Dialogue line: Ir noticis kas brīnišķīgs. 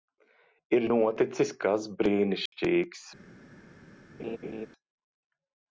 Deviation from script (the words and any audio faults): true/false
true